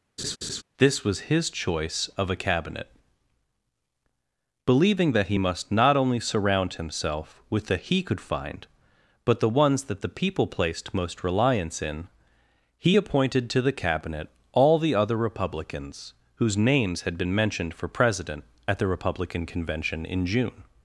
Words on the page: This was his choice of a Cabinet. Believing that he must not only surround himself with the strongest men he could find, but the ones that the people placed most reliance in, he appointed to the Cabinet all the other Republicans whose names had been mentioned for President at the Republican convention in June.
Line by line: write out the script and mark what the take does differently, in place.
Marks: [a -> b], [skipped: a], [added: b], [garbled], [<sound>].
[laugh] This was his choice of a Cabinet. Believing that he must not only surround himself with the [skipped: strongest men] he could find, but the ones that the people placed most reliance in, he appointed to the Cabinet all the other Republicans whose names had been mentioned for President at the Republican convention in June.